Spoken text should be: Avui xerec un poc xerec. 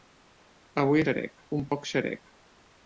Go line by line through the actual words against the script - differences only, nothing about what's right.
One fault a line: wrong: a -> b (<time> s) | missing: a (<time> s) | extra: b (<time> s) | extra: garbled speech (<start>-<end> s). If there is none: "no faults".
no faults